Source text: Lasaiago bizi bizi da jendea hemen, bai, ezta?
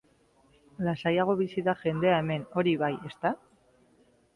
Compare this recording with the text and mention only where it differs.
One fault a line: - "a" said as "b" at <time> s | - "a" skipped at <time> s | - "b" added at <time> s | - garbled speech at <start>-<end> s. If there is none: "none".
- "bizi" skipped at 1.6 s
- "hori" added at 2.6 s